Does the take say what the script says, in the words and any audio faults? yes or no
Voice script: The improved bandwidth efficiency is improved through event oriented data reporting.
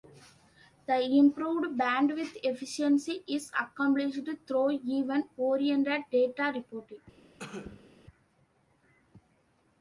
no